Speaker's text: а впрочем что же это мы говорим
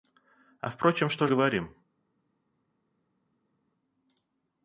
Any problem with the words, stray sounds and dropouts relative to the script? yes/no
yes